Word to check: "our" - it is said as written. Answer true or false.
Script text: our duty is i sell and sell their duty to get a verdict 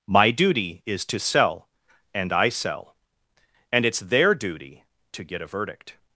false